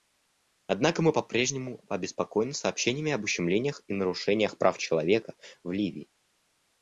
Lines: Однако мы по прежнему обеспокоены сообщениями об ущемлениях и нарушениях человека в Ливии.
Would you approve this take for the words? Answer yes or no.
no